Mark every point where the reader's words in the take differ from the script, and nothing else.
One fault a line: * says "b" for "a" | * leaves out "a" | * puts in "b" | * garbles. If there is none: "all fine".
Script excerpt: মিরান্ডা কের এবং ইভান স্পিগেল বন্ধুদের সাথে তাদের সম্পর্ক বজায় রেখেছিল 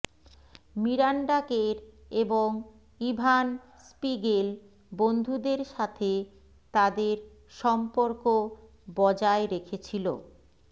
all fine